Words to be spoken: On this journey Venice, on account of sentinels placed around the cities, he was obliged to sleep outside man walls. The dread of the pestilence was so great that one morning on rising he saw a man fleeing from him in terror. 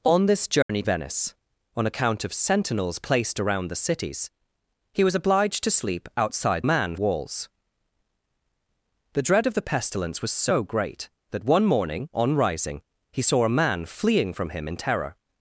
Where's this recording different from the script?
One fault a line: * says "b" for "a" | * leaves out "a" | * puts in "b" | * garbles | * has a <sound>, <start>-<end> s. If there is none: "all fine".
* has a dropout, 0.6-0.7 s